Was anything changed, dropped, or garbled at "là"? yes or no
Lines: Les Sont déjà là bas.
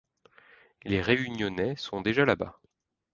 no